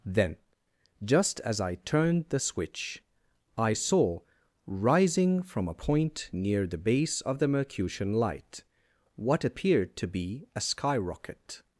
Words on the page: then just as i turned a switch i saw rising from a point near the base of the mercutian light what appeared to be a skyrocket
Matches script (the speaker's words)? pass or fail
fail